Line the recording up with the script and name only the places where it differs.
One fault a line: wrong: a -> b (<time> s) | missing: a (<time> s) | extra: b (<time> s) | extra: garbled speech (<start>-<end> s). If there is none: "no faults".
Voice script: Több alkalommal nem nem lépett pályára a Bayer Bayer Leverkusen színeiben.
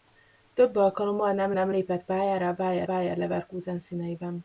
no faults